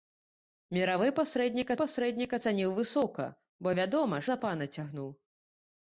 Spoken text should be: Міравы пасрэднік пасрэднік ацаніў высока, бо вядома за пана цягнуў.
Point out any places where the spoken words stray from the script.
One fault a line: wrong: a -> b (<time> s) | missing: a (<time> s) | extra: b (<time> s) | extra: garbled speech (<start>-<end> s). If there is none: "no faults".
no faults